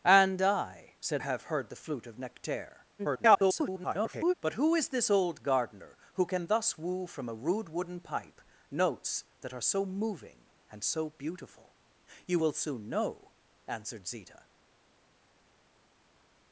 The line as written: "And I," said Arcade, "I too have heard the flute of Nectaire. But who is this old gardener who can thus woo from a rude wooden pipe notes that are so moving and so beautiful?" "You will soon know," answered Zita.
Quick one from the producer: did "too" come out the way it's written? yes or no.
no